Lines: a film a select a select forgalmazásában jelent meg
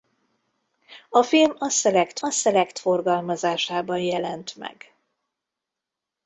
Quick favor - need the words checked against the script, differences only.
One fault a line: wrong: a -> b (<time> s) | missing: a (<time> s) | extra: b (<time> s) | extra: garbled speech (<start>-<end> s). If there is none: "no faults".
no faults